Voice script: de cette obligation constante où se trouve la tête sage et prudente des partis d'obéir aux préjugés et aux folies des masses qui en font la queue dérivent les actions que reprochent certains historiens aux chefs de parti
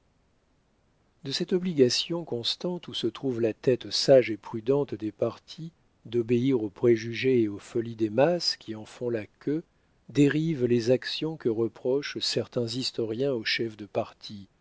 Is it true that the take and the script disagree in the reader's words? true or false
false